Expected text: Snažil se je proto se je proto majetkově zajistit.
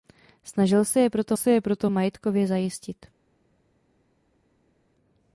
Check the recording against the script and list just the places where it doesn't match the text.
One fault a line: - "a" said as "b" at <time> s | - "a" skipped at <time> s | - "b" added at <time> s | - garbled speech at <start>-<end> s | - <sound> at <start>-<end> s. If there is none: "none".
none